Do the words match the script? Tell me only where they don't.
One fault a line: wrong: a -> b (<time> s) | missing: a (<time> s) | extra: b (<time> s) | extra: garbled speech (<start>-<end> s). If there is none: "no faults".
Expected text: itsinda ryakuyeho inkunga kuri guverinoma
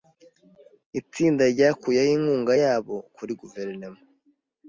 extra: yabo (2.6 s)